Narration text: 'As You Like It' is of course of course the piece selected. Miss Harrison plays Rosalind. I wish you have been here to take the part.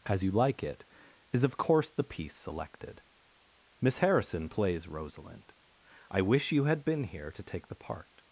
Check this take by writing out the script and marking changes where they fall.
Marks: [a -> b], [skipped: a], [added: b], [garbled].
'As You Like It' is of course [skipped: of course] the piece selected. Miss Harrison plays Rosalind. I wish you [have -> had] been here to take the part.